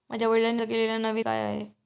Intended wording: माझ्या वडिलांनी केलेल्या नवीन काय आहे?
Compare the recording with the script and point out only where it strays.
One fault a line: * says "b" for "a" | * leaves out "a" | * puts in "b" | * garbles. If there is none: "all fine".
all fine